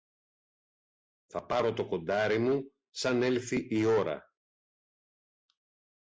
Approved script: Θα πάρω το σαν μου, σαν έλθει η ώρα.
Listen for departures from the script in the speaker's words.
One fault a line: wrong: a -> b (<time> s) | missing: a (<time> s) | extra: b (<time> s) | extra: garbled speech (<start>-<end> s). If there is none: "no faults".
wrong: σαν -> κοντάρι (1.9 s)